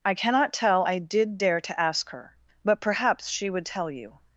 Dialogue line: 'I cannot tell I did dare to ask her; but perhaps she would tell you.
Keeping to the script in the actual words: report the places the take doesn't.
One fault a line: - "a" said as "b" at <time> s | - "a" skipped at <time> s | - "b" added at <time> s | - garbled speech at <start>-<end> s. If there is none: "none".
none